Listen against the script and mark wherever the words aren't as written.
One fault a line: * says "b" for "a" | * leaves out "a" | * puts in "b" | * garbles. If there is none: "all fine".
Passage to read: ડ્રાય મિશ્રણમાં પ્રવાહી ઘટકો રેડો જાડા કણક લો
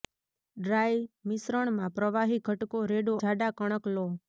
all fine